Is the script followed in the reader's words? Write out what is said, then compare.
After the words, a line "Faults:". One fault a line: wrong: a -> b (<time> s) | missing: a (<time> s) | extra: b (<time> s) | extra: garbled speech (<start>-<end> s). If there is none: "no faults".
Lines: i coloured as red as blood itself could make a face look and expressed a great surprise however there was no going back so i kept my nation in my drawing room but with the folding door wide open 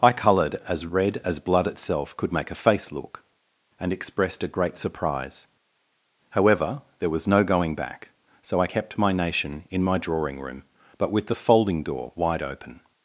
i coloured as red as blood itself could make a face look and expressed a great surprise however there was no going back so i kept my nation in my drawing room but with the folding door wide open
Faults:
no faults